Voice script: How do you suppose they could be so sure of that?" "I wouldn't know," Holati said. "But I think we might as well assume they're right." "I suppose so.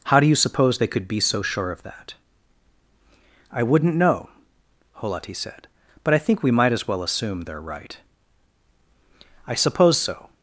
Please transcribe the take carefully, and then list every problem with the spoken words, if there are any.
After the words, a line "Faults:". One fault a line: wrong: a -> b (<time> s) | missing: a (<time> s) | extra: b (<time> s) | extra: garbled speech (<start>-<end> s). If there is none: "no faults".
How do you suppose they could be so sure of that?" "I wouldn't know," Holati said. "But I think we might as well assume they're right." "I suppose so.
Faults:
no faults